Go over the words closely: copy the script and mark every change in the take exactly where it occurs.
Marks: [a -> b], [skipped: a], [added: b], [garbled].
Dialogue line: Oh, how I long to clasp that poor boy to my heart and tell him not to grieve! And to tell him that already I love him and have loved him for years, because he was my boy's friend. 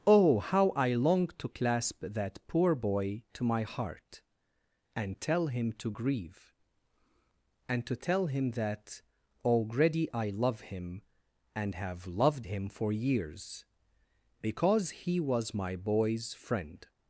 Oh, how I long to clasp that poor boy to my heart and tell him [skipped: not] to grieve! And to tell him that already I love him and have loved him for years, because he was my boy's friend.